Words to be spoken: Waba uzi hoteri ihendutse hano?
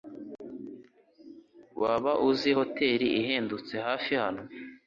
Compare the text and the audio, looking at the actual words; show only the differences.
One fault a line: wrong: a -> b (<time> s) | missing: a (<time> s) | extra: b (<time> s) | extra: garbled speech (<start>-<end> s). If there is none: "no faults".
extra: hafi (3.9 s)